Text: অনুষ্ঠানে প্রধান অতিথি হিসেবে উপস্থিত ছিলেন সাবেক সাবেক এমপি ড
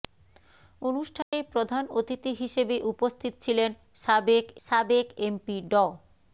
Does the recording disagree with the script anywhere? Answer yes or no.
no